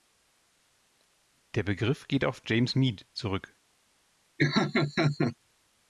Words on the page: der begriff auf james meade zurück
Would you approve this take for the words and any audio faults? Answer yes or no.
no